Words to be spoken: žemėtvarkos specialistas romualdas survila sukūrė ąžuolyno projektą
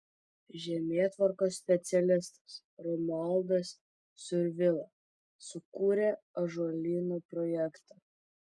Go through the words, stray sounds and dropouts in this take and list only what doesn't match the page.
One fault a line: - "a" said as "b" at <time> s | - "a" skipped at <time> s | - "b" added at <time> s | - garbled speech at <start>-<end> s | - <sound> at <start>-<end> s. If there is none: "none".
none